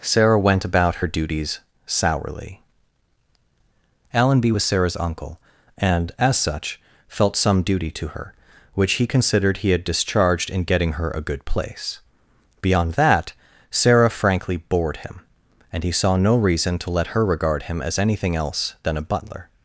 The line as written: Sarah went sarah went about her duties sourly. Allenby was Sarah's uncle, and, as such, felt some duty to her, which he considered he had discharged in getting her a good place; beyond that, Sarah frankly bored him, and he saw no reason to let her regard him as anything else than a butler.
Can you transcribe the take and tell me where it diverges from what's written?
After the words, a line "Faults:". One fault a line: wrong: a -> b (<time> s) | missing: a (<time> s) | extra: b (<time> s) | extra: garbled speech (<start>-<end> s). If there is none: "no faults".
Sarah went about her duties sourly. Allenby was Sarah's uncle, and, as such, felt some duty to her, which he considered he had discharged in getting her a good place; beyond that, Sarah frankly bored him, and he saw no reason to let her regard him as anything else than a butler.
Faults:
missing: sarah went (0.7 s)